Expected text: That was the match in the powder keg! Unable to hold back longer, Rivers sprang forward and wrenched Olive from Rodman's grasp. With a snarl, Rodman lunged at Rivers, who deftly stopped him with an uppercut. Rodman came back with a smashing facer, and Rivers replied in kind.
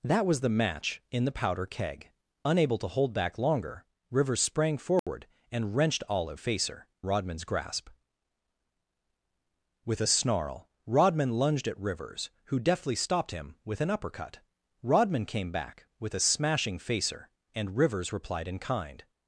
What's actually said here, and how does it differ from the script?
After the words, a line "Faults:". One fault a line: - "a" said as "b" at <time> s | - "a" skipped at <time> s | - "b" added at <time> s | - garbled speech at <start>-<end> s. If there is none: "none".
That was the match in the powder keg! Unable to hold back longer, Rivers sprang forward and wrenched Olive facer Rodman's grasp. With a snarl, Rodman lunged at Rivers, who deftly stopped him with an uppercut. Rodman came back with a smashing facer, and Rivers replied in kind.
Faults:
- "from" said as "facer" at 6.4 s